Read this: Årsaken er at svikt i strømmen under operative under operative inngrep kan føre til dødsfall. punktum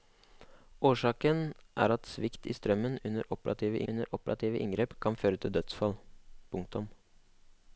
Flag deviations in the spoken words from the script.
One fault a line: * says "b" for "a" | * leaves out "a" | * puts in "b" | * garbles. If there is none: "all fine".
all fine